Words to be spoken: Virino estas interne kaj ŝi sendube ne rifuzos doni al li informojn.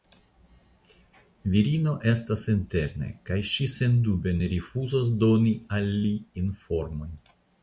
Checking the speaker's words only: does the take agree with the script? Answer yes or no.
yes